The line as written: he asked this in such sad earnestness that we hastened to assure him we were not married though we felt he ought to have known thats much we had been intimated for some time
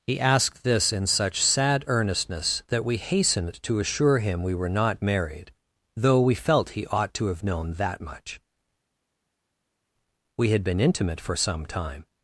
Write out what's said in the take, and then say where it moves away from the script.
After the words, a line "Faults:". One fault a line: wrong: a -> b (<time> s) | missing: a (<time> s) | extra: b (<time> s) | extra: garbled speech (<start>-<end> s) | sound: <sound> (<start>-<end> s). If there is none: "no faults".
he asked this in such sad earnestness that we hastened to assure him we were not married though we felt he ought to have known that much we had been intimate for some time
Faults:
wrong: thats -> that (7.7 s)
wrong: intimated -> intimate (10.8 s)